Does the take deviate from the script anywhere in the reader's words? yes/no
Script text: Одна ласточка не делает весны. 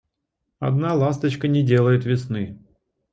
no